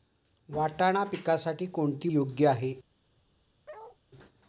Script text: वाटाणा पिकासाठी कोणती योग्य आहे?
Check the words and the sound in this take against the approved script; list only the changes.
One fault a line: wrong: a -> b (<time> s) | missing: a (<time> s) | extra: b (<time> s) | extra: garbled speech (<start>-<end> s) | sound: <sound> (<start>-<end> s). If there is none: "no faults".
sound: bark (3.7-4.0 s)